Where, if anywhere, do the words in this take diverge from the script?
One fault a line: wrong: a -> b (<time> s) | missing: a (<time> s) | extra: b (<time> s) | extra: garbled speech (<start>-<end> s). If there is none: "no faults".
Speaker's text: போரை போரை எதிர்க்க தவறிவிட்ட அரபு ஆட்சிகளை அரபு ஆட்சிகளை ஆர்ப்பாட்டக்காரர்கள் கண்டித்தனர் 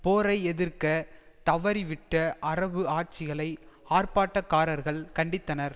missing: போரை (0.4 s)
missing: அரபு ஆட்சிகளை (3.5 s)